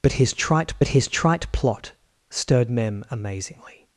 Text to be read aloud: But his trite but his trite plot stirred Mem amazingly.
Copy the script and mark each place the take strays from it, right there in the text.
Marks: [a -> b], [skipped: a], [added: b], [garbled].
But his trite but his trite plot stirred Mem amazingly.